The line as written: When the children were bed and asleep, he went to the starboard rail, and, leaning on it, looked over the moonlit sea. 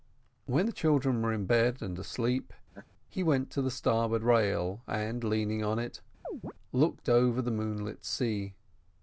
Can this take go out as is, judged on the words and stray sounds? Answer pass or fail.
fail